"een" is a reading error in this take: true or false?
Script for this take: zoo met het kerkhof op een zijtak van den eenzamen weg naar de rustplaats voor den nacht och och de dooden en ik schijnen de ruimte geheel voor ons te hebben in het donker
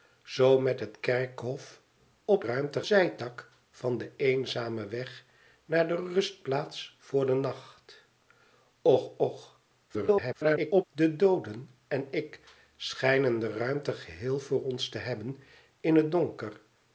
true